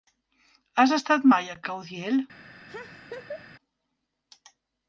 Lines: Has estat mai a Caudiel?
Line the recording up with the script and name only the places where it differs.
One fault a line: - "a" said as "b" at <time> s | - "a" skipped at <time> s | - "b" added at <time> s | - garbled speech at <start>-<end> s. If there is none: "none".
none